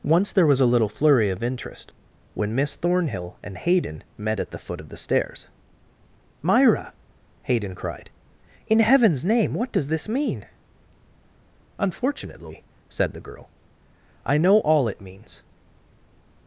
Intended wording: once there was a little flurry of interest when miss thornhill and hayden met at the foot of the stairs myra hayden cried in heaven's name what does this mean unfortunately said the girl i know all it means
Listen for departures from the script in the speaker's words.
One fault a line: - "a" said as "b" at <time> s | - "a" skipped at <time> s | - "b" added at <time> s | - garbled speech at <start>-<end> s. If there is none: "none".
none